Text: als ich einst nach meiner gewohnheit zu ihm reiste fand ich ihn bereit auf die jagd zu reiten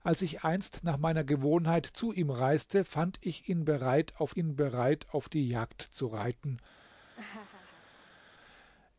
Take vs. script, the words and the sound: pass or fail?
fail